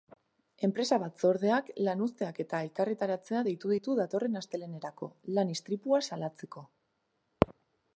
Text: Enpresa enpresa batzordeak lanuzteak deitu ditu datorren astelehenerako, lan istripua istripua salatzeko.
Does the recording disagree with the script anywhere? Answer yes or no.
yes